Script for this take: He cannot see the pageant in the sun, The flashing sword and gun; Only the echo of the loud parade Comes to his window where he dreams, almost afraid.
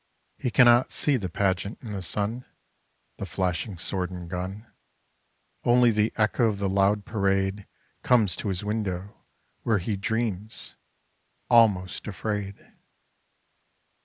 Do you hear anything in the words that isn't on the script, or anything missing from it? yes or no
no